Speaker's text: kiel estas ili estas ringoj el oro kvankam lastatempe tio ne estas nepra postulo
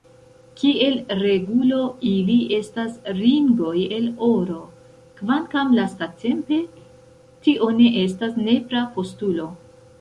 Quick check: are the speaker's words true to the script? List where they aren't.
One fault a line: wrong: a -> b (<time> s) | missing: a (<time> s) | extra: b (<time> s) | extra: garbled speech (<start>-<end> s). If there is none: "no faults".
wrong: estas -> regulo (1.2 s)